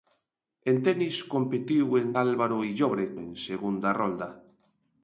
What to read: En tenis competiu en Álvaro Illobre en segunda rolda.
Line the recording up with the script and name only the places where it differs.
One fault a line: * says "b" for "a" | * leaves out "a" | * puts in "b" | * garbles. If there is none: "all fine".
all fine